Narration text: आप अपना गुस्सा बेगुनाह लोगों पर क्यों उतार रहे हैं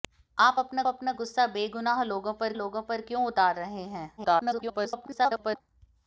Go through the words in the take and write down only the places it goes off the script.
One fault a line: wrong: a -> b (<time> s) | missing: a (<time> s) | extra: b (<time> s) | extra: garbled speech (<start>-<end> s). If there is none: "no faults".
extra: अपना (0.9 s)
extra: लोगों पर (2.5 s)
extra: garbled speech (4.2-5.6 s)